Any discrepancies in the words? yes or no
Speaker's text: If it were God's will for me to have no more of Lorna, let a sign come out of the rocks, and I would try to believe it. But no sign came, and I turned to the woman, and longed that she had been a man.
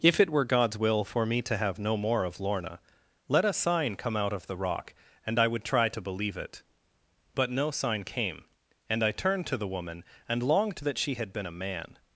yes